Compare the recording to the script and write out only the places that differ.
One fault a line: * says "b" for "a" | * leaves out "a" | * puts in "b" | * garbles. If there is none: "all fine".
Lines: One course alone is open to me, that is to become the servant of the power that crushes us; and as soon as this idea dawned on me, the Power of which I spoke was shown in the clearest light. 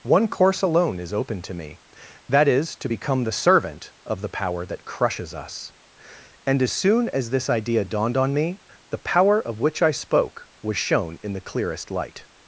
all fine